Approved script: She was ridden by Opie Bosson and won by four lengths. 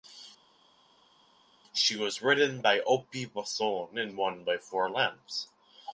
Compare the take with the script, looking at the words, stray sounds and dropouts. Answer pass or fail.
pass